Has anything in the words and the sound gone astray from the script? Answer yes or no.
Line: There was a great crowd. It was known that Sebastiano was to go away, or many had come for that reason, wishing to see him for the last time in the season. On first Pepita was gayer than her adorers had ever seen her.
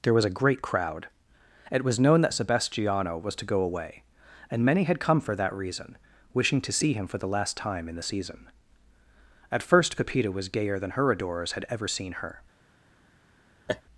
yes